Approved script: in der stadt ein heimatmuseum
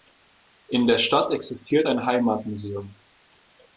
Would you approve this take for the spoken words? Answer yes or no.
no